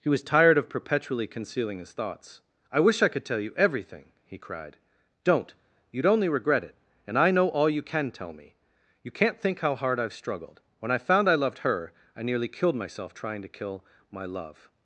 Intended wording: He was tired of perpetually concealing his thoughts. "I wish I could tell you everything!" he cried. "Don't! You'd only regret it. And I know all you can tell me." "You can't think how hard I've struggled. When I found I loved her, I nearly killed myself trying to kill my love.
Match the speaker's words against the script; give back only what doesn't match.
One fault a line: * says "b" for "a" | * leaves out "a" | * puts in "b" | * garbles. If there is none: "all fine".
all fine